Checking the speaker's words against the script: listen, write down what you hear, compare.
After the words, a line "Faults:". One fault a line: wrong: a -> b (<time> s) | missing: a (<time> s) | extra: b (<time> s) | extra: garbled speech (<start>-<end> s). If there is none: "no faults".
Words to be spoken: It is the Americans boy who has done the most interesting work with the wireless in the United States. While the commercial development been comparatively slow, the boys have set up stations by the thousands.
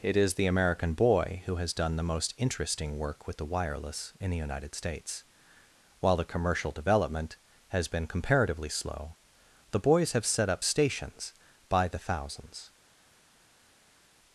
It is the American boy who has done the most interesting work with the wireless in the United States. While the commercial development has been comparatively slow, the boys have set up stations by the thousands.
Faults:
wrong: Americans -> American (0.5 s)
extra: has (7.7 s)